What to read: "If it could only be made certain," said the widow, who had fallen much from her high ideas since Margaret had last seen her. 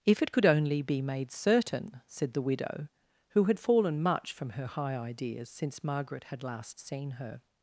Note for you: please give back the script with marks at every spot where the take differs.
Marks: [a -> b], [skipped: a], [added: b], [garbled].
"If it could only be made certain," said the widow, who had fallen much from her high ideas since Margaret had last seen her.